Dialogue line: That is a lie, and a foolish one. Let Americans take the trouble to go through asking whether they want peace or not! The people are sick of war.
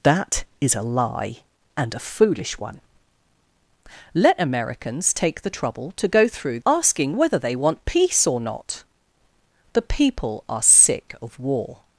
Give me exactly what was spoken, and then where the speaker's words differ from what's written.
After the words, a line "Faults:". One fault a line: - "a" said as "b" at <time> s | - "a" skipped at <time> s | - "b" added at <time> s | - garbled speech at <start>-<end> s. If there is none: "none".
That is a lie, and a foolish one. Let Americans take the trouble to go through asking whether they want peace or not! The people are sick of war.
Faults:
none